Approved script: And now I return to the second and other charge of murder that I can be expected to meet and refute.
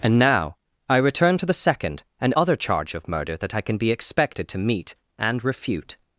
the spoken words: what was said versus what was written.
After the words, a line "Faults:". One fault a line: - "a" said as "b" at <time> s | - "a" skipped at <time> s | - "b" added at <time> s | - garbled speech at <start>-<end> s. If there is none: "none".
And now I return to the second and other charge of murder that I can be expected to meet and refute.
Faults:
none